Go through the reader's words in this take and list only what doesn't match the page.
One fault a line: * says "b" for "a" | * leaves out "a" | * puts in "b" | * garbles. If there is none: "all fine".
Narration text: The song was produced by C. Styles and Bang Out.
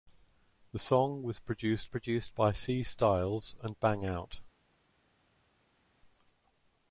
* puts in "produced"